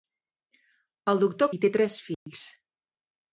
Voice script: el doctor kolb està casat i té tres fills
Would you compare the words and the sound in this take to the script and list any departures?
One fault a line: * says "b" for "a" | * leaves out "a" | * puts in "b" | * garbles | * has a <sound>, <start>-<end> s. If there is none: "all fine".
* leaves out "kolb està casat"
* has a dropout, 2.1-2.3 s